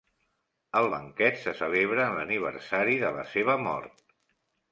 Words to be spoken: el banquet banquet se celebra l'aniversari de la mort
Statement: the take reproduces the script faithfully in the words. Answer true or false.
false